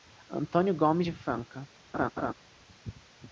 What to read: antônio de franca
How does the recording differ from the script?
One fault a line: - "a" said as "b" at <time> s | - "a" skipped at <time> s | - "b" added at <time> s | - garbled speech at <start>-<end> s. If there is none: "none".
- "gomes" added at 0.7 s